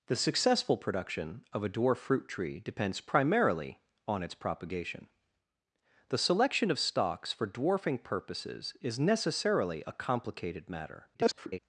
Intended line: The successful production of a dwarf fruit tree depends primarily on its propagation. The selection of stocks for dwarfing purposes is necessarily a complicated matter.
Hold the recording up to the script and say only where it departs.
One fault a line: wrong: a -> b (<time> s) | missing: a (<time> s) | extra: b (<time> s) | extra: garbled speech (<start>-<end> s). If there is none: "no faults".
extra: garbled speech (11.1-11.6 s)